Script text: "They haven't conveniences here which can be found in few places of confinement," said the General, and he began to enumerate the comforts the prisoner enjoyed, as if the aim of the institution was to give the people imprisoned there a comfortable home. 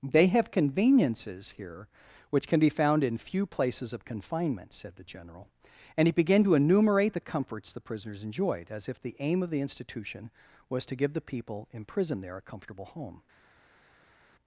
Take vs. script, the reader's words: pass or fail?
fail